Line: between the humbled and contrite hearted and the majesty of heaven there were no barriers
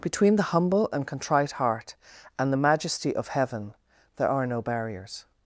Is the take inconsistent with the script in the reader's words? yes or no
yes